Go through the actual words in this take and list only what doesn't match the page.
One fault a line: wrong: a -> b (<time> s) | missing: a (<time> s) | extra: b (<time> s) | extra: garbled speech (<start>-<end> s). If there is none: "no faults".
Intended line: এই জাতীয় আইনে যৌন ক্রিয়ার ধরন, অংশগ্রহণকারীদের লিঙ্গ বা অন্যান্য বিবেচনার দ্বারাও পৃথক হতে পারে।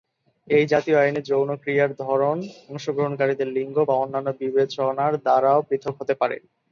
no faults